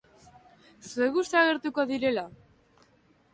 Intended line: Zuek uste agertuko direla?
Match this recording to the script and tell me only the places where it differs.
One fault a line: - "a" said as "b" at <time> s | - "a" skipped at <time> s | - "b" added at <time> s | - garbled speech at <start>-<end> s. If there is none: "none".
none